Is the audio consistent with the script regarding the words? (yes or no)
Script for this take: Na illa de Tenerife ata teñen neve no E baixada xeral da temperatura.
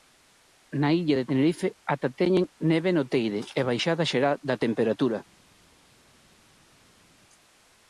no